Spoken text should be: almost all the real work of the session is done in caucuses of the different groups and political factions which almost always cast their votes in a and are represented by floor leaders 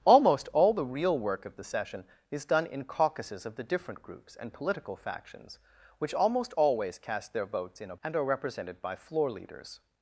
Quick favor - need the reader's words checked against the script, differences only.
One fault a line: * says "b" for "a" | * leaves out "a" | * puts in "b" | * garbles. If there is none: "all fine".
all fine